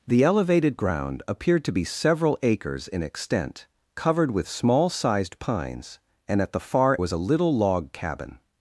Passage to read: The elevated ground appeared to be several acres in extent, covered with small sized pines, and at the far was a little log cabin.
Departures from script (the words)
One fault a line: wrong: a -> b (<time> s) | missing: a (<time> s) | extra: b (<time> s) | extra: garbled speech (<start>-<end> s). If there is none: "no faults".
no faults